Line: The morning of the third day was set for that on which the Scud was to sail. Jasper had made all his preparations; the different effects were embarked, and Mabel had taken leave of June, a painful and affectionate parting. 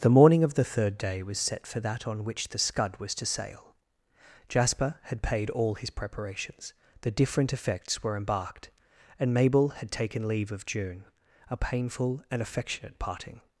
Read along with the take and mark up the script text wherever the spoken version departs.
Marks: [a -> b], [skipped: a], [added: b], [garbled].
The morning of the third day was set for that on which the Scud was to sail. Jasper had [made -> paid] all his preparations; the different effects were embarked, and Mabel had taken leave of June, a painful and affectionate parting.